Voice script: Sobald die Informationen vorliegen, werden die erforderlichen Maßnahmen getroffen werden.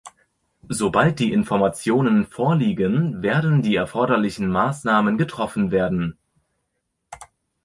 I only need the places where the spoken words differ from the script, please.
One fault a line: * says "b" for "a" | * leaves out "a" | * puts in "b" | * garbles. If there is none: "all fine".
all fine